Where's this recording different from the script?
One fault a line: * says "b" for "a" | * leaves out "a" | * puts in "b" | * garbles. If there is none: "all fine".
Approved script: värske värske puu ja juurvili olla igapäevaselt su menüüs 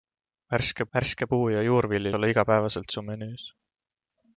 all fine